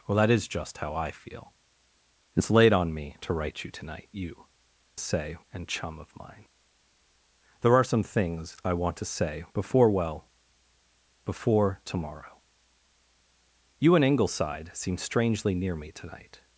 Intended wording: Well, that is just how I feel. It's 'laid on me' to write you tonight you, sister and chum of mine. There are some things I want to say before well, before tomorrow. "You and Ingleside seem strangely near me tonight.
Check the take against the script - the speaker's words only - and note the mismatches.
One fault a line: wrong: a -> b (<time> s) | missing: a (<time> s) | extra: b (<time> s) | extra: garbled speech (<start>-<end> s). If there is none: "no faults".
wrong: sister -> say (5.0 s)